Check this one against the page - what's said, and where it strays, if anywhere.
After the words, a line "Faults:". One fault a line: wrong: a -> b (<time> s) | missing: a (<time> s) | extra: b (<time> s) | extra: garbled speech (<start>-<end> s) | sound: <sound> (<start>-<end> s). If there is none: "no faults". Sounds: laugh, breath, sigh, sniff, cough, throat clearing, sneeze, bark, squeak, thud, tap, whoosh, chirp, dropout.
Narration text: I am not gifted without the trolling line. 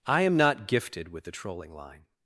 I am not gifted with the trolling line.
Faults:
wrong: without -> with (1.1 s)